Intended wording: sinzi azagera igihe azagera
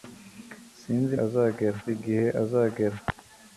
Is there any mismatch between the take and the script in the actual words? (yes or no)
no